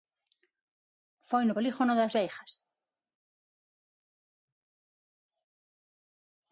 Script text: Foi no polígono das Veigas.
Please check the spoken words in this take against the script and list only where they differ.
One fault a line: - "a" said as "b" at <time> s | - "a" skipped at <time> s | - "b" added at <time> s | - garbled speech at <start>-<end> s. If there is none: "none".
none